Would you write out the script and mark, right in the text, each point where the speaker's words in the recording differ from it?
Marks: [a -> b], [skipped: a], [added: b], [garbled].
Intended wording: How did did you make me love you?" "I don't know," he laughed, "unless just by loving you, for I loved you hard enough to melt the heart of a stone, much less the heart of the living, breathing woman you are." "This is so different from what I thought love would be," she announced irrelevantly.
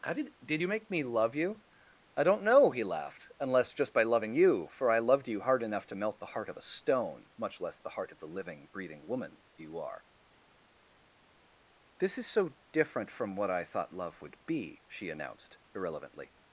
How did did you make me love you?" "I don't know," he laughed, "unless just by loving you, for I loved you hard enough to melt the heart of a stone, much less the heart of the living, breathing woman you are." "This is so different from what I thought love would be," she announced irrelevantly.